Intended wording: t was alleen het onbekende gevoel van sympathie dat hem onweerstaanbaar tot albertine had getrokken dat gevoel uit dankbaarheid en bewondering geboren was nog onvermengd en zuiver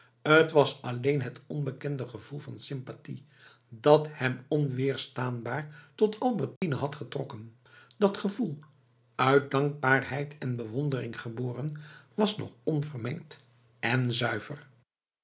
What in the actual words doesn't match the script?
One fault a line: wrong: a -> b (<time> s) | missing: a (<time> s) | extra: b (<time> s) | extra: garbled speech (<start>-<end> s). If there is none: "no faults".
no faults